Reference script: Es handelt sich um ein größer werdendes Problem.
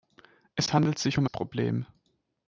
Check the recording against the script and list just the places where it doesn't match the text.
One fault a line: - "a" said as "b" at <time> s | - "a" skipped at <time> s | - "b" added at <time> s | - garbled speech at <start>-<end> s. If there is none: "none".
- "ein größer werdendes" skipped at 1.3 s